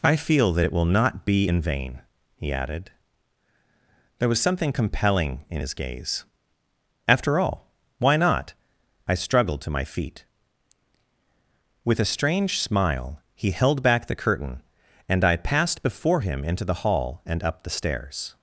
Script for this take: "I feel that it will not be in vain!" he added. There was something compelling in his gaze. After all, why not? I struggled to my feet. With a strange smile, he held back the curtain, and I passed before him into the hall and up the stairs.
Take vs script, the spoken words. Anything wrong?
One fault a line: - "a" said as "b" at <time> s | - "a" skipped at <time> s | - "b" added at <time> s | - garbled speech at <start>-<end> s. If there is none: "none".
none